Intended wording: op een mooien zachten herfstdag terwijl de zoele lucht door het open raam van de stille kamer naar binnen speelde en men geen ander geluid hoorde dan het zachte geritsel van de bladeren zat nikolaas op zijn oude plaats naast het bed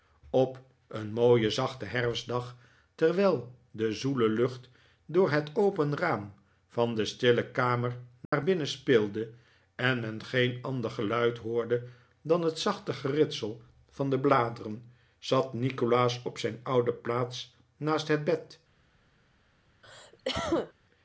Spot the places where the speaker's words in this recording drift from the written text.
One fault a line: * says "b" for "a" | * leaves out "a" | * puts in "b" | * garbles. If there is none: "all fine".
all fine